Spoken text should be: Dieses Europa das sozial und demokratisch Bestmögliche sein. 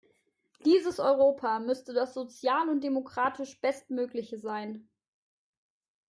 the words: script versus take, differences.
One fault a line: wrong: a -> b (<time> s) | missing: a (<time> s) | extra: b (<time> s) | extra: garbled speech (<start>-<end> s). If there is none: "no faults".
extra: müsste (1.6 s)